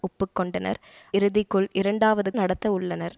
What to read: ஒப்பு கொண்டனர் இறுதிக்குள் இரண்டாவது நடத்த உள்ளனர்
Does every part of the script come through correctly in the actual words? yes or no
yes